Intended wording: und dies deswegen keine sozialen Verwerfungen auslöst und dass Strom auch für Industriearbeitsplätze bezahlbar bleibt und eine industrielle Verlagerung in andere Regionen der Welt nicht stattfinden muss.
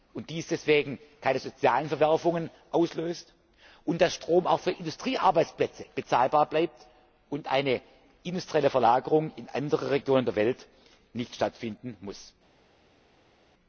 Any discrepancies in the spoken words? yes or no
no